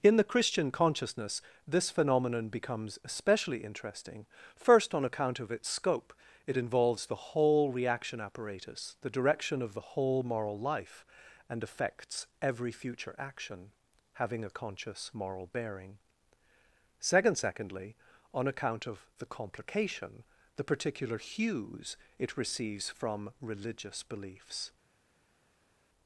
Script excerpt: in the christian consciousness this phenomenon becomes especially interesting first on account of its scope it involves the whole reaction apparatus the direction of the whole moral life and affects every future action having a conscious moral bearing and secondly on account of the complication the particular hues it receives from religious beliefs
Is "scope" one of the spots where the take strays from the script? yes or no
no